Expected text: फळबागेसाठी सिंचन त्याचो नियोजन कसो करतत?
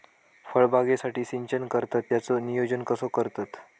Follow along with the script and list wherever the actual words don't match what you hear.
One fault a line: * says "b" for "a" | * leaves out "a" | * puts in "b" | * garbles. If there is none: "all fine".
* puts in "करतत"